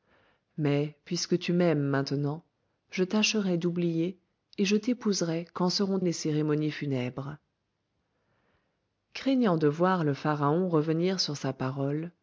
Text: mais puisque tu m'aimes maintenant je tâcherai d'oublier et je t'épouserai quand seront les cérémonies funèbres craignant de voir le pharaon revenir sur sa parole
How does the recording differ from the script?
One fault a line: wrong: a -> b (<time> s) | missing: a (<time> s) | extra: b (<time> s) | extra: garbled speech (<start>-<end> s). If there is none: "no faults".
no faults